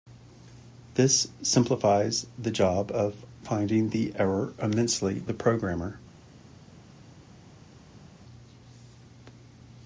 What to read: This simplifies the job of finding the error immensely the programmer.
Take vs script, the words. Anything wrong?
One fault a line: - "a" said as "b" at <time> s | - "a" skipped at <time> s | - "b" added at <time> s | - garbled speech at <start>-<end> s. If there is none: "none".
none